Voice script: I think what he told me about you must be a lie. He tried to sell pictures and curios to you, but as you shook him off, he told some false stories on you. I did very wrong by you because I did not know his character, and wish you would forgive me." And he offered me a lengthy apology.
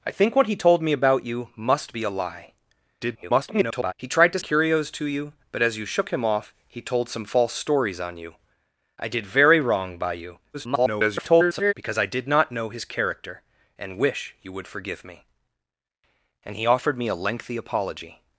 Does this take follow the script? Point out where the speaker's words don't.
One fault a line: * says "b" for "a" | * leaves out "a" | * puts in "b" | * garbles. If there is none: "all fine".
* garbles
* leaves out "sell pictures and"
* garbles